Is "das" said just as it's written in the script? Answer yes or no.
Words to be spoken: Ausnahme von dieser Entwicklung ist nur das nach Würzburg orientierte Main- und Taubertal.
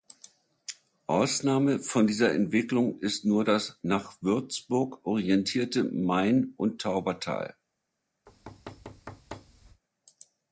yes